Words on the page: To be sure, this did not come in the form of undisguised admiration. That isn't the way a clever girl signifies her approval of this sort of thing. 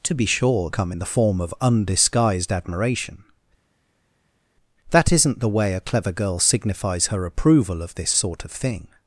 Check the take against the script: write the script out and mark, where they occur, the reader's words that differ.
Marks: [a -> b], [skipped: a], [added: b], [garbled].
To be sure, [skipped: this did not] come in the form of undisguised admiration. That isn't the way a clever girl signifies her approval of this sort of thing.